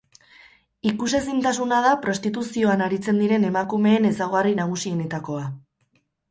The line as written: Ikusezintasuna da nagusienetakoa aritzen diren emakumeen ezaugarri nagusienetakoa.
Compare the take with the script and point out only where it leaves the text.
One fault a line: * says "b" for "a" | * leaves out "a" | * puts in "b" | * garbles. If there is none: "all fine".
* says "prostituzioan" for "nagusienetakoa"